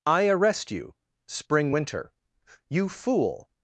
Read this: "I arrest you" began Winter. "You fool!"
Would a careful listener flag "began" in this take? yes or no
yes